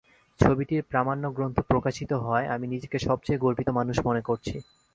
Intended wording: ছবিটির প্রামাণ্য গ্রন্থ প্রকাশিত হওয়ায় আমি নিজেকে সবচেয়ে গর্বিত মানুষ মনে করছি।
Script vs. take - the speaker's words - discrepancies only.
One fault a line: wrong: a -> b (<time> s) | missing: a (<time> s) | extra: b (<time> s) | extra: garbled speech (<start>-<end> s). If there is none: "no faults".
no faults